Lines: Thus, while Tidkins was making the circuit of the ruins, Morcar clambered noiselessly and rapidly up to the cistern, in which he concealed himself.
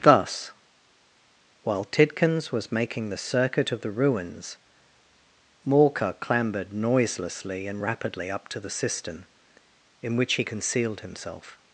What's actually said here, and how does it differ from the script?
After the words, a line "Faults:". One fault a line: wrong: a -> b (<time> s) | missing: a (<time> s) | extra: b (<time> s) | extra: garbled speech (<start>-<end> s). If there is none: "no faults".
Thus, while Tidkins was making the circuit of the ruins, Morcar clambered noiselessly and rapidly up to the cistern, in which he concealed himself.
Faults:
no faults